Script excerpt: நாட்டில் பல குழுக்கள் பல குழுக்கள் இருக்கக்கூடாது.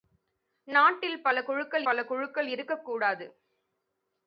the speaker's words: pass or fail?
pass